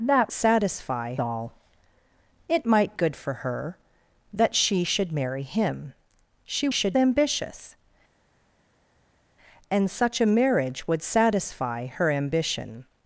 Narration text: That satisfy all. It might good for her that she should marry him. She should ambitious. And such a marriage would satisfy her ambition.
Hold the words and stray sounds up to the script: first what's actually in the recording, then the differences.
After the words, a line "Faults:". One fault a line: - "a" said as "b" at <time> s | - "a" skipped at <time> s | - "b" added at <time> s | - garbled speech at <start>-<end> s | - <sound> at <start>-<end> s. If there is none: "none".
That satisfy all. It might good for her that she should marry him. She should ambitious. And such a marriage would satisfy her ambition.
Faults:
none